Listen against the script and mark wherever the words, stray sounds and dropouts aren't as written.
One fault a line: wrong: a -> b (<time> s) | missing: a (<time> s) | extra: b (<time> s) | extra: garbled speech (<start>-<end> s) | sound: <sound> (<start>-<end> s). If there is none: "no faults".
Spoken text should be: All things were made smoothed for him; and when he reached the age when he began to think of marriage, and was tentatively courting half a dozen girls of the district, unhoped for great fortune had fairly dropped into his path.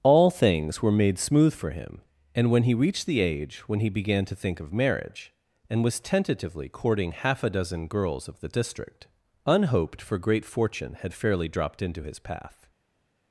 wrong: smoothed -> smooth (1.2 s)